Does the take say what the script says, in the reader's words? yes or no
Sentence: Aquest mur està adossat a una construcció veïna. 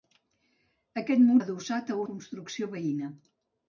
no